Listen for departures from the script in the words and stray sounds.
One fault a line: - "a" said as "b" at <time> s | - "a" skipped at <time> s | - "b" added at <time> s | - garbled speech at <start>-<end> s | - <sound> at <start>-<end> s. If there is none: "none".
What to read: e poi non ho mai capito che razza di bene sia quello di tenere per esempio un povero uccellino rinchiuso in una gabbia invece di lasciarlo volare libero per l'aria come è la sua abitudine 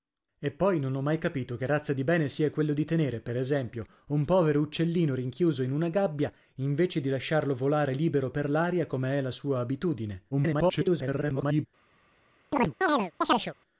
- garbled speech at 10.3-11.7 s
- chirp at 12.5-13.5 s